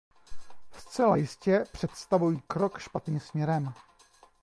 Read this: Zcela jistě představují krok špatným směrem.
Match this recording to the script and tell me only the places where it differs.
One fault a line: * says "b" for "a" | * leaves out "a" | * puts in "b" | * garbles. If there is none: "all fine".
all fine